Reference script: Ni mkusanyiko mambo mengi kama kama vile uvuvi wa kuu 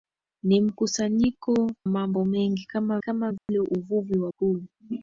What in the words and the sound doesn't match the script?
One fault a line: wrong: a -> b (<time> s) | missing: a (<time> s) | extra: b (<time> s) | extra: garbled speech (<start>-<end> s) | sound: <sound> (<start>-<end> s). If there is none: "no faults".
sound: dropout (3.4-3.5 s)